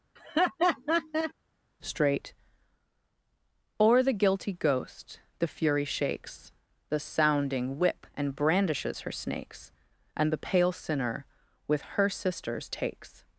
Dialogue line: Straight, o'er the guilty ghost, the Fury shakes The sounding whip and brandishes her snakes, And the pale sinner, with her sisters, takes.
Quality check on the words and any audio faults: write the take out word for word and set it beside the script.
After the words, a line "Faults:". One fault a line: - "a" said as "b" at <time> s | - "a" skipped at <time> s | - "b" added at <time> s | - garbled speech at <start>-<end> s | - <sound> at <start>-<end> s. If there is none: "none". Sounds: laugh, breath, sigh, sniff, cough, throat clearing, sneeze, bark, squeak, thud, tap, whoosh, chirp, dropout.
Straight, o'er the guilty ghost, the Fury shakes The sounding whip and brandishes her snakes, And the pale sinner, with her sisters, takes.
Faults:
- laugh at 0.2-1.3 s